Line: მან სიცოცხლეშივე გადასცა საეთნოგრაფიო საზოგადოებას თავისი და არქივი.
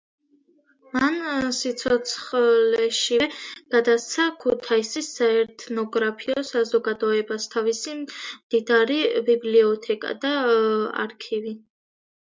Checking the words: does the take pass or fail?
fail